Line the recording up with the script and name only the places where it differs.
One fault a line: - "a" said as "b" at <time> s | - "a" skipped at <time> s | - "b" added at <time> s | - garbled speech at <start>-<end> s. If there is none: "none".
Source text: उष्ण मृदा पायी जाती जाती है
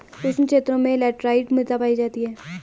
- "क्षेत्रों में लैटराइट" added at 0.5 s
- "जाती" skipped at 2.2 s